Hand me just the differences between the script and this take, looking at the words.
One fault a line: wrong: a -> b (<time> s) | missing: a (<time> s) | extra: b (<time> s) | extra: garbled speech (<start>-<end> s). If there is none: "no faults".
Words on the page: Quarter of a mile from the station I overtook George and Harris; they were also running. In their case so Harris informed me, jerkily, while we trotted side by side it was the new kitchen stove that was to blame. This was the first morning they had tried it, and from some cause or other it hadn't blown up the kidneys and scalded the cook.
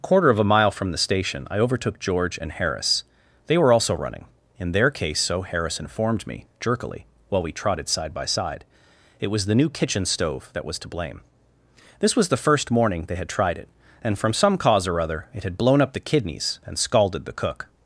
wrong: hadn't -> had (15.4 s)